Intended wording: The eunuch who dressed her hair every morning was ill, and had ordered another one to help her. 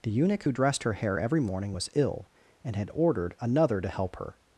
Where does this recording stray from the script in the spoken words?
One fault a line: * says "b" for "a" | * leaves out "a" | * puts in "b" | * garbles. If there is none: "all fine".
* leaves out "one"